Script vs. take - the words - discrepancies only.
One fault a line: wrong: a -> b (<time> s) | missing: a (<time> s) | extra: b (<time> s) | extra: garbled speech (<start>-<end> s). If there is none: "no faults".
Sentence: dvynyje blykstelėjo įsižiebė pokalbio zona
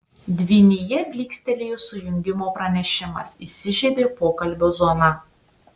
extra: sujungimo pranešimas (1.8 s)